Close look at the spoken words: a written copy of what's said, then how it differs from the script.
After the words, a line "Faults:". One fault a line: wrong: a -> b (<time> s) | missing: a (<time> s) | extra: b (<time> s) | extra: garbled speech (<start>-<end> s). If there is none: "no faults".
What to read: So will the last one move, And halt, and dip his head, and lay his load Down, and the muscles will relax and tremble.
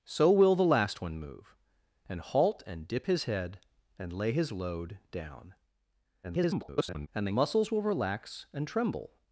So will the last one move, And halt, and dip his head, and lay his load Down, [garbled] and the muscles will relax and tremble.
Faults:
extra: garbled speech (6.2-7.1 s)